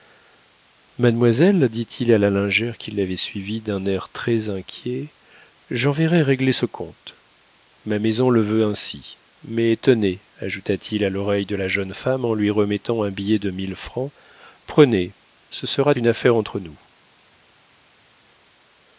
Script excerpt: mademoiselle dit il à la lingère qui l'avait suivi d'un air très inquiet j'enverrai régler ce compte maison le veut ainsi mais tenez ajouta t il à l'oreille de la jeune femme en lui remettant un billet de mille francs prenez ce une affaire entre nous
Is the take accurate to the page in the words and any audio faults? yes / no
no